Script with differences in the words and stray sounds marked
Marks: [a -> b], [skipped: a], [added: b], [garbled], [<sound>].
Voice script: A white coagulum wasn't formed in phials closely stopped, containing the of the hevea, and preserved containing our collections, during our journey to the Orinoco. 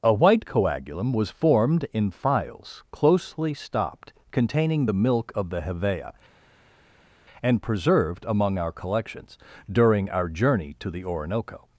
A white coagulum [wasn't -> was] formed in phials closely stopped, containing the [added: milk] of the hevea, and preserved [containing -> among] our collections, during our journey to the Orinoco.